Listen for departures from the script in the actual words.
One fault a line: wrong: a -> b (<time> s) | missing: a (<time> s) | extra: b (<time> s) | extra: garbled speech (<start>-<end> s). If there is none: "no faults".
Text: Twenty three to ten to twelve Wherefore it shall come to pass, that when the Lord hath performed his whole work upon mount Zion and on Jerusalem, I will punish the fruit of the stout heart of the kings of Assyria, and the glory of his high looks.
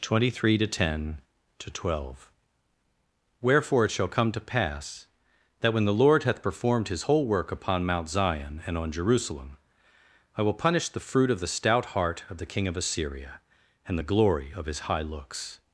wrong: kings -> king (12.5 s)